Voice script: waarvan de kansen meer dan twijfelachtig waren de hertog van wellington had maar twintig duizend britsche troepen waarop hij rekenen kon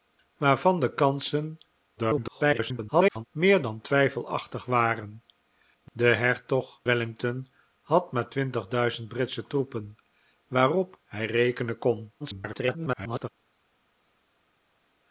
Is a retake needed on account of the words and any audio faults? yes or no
yes